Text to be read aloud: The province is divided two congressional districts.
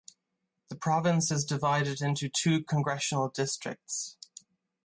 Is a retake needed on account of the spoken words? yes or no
yes